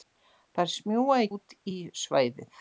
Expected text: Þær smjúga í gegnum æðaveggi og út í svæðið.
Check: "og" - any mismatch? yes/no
yes